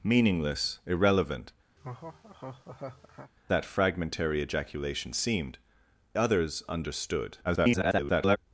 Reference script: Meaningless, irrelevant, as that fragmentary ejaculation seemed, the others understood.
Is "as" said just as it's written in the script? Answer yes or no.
no